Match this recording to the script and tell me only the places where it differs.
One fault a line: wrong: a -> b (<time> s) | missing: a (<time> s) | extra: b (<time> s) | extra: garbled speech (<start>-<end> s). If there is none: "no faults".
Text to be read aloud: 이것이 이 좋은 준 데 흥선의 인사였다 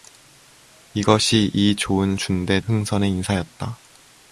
no faults